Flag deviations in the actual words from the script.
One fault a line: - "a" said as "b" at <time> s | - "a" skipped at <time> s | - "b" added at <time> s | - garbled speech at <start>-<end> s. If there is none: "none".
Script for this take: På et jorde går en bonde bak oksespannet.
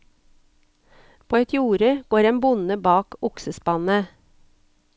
none